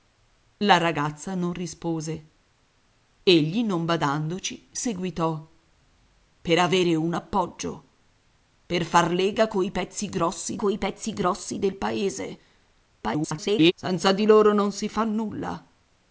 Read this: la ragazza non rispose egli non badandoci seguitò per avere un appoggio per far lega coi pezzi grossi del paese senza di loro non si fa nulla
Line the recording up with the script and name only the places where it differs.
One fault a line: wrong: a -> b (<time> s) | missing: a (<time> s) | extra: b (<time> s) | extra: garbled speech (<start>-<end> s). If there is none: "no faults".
extra: coi pezzi grossi (10.6 s)
extra: garbled speech (13.0-13.7 s)